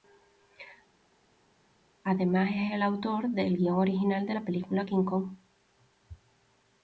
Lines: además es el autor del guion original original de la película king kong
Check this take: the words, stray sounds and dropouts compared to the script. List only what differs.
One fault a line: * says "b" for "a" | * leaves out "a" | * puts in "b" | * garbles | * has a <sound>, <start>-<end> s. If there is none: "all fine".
* leaves out "original"